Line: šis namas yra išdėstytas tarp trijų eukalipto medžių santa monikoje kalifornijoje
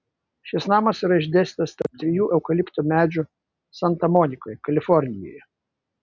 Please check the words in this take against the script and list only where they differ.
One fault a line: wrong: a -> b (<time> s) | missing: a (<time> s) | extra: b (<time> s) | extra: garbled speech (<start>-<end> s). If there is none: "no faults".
no faults